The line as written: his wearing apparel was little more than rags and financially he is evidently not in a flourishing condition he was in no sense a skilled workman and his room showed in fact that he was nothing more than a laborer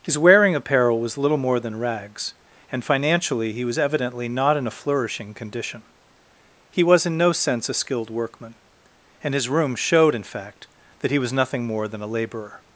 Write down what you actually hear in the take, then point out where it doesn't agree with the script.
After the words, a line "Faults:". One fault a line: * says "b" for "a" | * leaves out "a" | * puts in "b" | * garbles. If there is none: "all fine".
his wearing apparel was little more than rags and financially he was evidently not in a flourishing condition he was in no sense a skilled workman and his room showed in fact that he was nothing more than a laborer
Faults:
* says "was" for "is"